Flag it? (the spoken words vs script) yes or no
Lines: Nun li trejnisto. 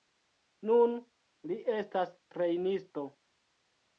yes